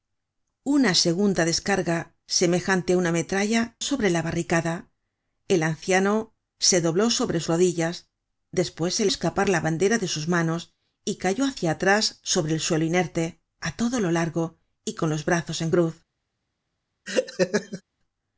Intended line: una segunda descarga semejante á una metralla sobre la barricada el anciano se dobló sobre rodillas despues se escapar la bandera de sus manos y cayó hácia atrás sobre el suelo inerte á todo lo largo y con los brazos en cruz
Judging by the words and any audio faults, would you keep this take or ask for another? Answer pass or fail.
fail